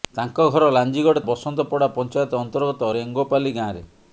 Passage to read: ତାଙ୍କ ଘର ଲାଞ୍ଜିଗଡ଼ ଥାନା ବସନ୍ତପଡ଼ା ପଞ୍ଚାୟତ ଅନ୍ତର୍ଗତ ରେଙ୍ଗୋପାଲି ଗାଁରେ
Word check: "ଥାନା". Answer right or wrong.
wrong